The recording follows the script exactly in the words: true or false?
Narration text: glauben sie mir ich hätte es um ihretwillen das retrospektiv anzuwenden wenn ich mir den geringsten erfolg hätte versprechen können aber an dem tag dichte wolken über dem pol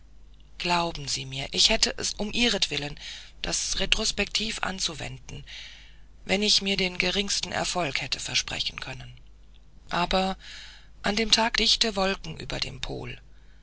true